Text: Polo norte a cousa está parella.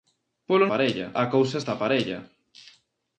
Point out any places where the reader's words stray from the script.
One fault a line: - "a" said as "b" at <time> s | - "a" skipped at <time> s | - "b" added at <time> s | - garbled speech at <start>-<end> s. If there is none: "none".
- "norte" said as "parella" at 0.7 s